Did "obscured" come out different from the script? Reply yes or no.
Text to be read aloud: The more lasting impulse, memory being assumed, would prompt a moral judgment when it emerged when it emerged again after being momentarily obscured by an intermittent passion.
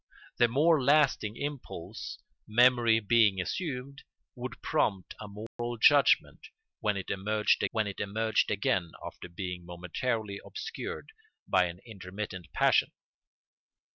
no